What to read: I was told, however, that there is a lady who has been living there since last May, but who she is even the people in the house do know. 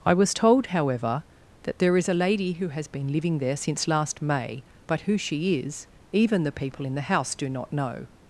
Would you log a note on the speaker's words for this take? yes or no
yes